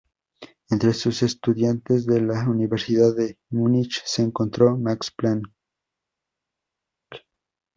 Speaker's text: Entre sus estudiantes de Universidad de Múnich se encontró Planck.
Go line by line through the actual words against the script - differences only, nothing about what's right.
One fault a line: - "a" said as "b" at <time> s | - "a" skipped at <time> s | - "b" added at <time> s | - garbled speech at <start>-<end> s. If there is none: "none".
- "la" added at 2.2 s
- "Max" added at 4.8 s